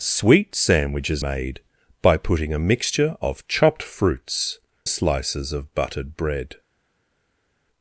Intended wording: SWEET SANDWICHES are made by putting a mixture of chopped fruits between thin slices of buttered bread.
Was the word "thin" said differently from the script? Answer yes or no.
yes